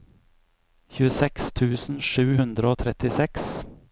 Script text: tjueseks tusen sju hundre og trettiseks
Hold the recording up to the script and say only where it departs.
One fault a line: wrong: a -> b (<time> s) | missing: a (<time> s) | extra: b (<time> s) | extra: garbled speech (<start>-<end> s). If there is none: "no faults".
no faults